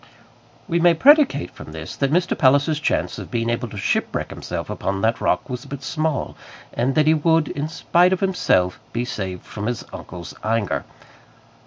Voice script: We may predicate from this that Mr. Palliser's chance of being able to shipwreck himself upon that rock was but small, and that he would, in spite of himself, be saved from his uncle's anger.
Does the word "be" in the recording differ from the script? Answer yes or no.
no